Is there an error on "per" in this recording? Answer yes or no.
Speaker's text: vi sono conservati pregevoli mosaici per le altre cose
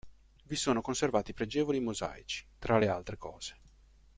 yes